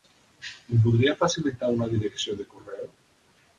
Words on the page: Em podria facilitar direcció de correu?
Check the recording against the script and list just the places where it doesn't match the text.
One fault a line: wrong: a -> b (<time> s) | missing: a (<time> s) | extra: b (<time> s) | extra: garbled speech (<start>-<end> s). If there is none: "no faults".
extra: una (1.8 s)